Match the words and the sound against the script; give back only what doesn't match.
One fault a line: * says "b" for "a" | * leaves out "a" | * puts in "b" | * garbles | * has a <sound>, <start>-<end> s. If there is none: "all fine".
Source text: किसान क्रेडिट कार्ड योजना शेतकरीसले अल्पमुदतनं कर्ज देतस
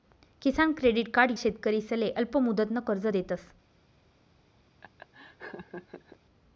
* leaves out "योजना"
* has a laugh, 4.8-6.2 s